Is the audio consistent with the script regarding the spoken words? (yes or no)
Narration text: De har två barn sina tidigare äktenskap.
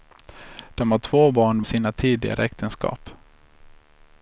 yes